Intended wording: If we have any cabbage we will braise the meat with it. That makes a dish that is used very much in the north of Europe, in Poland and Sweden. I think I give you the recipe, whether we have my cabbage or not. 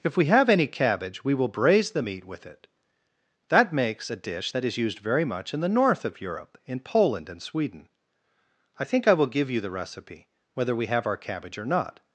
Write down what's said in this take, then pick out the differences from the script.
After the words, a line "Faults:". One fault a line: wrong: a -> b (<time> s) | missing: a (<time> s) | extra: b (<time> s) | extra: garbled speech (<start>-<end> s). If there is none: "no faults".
If we have any cabbage we will braise the meat with it. That makes a dish that is used very much in the north of Europe, in Poland and Sweden. I think I will give you the recipe, whether we have our cabbage or not.
Faults:
extra: will (9.1 s)
wrong: my -> our (11.1 s)